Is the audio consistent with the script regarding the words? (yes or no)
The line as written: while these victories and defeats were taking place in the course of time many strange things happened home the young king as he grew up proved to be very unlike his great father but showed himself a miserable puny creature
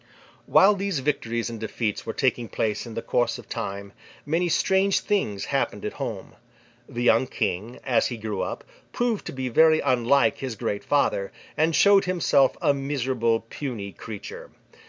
no